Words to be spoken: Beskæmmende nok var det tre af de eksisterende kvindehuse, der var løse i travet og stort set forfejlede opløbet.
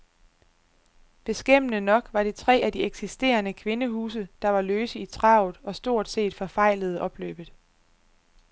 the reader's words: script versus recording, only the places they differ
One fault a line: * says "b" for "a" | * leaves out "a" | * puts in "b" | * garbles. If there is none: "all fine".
all fine